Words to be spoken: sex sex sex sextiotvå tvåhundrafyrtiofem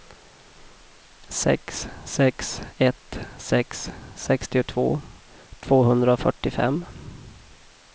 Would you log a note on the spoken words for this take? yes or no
yes